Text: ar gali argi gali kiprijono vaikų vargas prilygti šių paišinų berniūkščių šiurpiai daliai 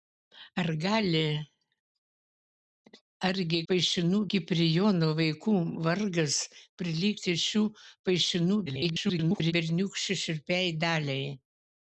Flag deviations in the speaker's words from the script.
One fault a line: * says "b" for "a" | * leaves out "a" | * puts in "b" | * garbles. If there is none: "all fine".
* says "paišinų" for "gali"
* garbles